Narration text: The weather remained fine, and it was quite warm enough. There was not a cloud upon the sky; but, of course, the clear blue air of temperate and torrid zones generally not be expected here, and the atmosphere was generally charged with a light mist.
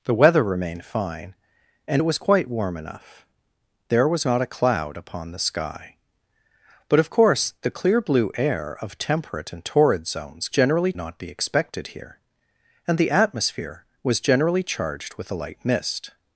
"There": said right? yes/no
yes